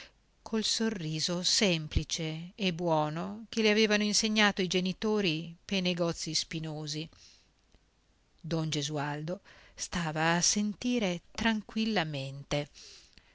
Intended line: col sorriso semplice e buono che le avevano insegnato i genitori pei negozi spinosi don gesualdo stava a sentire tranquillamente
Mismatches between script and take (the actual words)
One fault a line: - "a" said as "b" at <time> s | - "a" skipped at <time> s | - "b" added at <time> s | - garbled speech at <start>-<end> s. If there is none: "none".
none